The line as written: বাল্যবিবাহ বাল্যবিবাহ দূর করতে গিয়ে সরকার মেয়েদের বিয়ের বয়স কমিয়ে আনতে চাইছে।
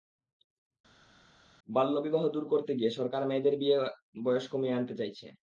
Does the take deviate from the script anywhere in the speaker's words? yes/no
yes